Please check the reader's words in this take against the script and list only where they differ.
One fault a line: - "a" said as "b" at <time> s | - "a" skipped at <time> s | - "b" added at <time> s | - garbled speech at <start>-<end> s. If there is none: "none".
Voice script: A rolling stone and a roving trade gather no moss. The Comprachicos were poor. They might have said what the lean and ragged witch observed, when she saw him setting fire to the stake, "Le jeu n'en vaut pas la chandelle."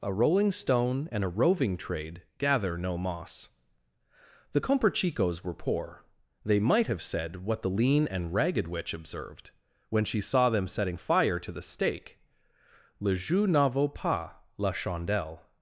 - "him" said as "them" at 10.5 s